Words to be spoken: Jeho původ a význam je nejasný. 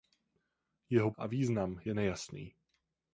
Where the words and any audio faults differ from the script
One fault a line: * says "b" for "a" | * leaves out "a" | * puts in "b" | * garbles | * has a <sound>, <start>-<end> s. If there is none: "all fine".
* leaves out "původ"